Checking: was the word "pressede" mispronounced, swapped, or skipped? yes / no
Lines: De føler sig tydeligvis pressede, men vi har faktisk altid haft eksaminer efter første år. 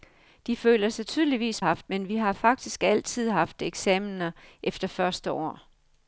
yes